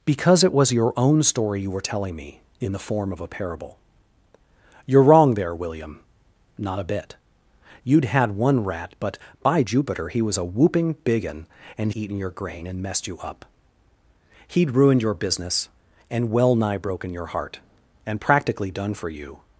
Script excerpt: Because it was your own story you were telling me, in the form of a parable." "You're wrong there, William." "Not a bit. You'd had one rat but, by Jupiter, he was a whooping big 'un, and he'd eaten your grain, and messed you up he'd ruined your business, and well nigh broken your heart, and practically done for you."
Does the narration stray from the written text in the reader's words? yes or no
yes